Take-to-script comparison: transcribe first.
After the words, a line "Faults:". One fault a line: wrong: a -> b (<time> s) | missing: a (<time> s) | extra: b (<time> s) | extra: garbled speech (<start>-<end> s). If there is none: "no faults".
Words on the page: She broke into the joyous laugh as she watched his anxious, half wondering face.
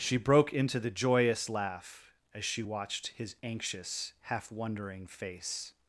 She broke into the joyous laugh as she watched his anxious, half wondering face.
Faults:
no faults